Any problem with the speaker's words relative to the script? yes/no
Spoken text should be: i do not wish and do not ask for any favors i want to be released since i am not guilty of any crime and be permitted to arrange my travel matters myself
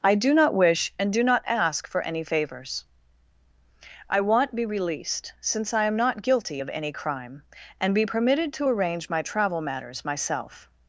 yes